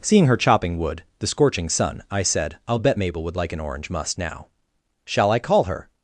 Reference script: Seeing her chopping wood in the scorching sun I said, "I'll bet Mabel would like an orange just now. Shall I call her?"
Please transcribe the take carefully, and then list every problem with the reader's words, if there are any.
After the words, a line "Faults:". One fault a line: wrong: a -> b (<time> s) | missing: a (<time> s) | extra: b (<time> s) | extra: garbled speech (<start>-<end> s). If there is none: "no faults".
Seeing her chopping wood the scorching sun I said, "I'll bet Mabel would like an orange must now. Shall I call her?"
Faults:
missing: in (1.0 s)
wrong: just -> must (3.9 s)